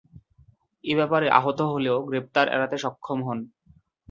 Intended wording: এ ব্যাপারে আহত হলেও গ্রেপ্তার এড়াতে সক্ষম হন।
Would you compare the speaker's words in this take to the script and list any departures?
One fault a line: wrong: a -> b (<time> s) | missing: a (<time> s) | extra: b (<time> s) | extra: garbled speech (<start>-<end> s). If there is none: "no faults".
no faults